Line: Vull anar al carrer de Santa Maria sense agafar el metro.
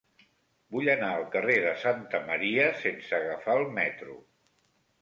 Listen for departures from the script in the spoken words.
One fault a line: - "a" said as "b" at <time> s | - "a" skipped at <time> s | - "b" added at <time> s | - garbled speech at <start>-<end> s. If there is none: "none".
none